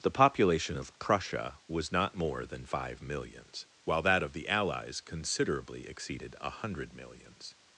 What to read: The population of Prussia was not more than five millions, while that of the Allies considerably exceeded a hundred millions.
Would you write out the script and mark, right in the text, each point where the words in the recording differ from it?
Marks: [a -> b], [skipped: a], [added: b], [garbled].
The population of Prussia was not more than five millions, while that of the Allies considerably exceeded a hundred millions.